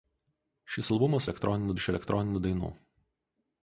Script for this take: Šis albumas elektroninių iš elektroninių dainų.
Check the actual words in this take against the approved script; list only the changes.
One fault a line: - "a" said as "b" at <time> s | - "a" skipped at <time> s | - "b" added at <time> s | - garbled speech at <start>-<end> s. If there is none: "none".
none